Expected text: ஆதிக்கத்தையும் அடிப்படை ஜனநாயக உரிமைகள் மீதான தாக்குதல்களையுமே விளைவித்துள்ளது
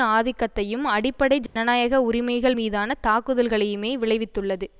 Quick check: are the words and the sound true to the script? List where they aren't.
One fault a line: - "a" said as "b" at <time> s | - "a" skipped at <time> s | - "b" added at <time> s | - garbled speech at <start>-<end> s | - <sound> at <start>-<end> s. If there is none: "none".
- dropout at 1.5-1.6 s